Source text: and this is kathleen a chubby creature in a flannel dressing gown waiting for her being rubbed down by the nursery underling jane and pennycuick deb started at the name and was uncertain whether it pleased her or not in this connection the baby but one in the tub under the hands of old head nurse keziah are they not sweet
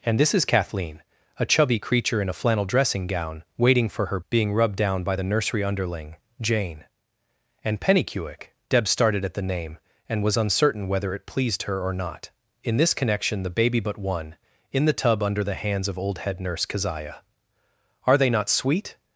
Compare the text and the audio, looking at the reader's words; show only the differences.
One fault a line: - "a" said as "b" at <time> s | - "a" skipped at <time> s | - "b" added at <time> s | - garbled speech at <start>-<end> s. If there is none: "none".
none